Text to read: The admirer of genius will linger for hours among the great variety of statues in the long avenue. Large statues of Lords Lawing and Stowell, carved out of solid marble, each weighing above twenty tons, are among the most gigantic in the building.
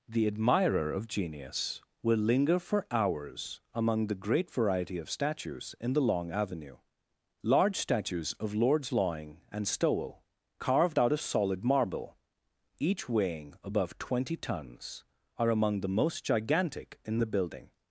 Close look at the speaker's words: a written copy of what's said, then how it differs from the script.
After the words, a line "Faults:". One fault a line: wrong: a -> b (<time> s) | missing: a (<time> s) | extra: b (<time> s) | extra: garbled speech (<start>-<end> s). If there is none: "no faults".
The admirer of genius will linger for hours among the great variety of statues in the long avenue. Large statues of Lords Lawing and Stowell, carved out of solid marble, each weighing above twenty tons, are among the most gigantic in the building.
Faults:
no faults